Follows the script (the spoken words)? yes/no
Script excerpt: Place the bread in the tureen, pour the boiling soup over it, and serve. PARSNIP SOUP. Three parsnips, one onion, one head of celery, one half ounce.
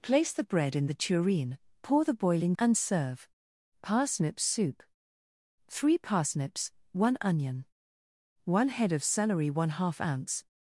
no